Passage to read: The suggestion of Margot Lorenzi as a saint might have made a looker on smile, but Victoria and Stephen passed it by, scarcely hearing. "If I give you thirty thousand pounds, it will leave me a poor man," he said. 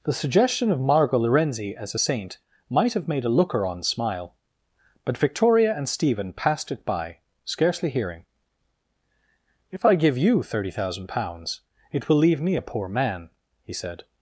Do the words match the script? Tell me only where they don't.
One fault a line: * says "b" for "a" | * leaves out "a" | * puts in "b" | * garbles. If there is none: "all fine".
all fine